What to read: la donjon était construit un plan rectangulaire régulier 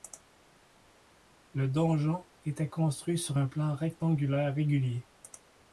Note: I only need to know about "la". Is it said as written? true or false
false